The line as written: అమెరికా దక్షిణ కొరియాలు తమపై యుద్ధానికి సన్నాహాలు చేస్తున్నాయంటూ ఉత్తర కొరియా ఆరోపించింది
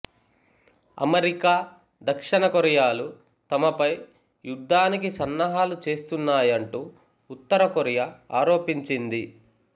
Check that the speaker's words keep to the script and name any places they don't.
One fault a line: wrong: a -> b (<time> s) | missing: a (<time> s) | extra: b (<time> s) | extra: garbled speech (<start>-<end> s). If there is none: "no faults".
no faults